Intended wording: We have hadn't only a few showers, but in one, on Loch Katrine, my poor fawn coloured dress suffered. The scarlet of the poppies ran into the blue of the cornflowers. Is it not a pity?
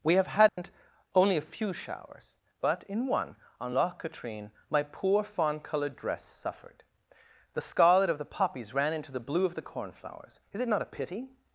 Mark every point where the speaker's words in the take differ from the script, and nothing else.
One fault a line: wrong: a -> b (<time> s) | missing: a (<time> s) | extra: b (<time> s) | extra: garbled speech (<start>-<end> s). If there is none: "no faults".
no faults